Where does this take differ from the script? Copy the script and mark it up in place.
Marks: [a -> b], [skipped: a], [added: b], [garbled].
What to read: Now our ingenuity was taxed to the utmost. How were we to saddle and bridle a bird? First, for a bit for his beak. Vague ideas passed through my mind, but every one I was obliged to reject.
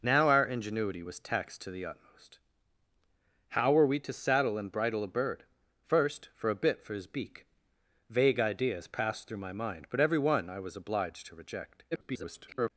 Now our ingenuity was taxed to the utmost. How were we to saddle and bridle a bird? First, for a bit for his beak. Vague ideas passed through my mind, but every one I was obliged to reject. [garbled]